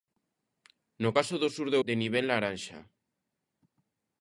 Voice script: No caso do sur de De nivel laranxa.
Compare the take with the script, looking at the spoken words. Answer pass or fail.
pass